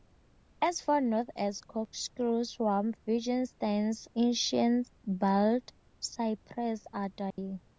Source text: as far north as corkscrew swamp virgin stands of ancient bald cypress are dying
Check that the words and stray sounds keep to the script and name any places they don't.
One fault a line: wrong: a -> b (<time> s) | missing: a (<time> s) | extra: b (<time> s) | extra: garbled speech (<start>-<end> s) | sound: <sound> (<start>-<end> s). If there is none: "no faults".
missing: of (4.1 s)
sound: dropout (7.3-7.4 s)